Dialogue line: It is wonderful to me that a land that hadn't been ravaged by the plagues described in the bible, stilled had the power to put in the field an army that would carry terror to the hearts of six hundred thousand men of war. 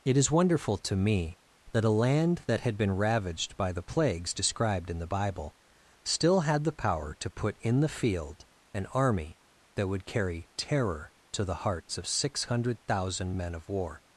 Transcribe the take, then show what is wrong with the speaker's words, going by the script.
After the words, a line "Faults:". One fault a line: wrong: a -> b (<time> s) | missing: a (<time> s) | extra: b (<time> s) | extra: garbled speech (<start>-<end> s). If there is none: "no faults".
It is wonderful to me that a land that had been ravaged by the plagues described in the bible, still had the power to put in the field an army that would carry terror to the hearts of six hundred thousand men of war.
Faults:
wrong: hadn't -> had (2.6 s)
wrong: stilled -> still (6.0 s)